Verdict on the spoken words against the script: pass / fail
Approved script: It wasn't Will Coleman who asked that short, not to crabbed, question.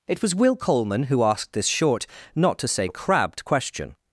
fail